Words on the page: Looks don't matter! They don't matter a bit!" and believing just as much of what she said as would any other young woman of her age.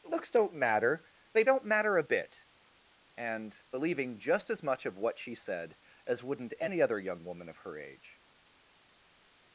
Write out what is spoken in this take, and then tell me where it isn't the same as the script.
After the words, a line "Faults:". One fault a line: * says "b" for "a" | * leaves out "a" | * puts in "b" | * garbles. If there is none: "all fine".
Looks don't matter! They don't matter a bit!" and believing just as much of what she said as wouldn't any other young woman of her age.
Faults:
* says "wouldn't" for "would"